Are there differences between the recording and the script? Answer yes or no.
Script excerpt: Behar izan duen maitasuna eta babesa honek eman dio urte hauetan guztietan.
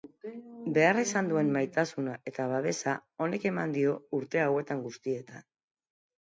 no